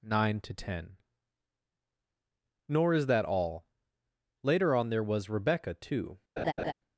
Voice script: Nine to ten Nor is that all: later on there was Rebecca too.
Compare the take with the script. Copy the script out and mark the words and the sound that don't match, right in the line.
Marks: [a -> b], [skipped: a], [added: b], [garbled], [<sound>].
Nine to ten Nor is that all: later on there was Rebecca too. [laugh]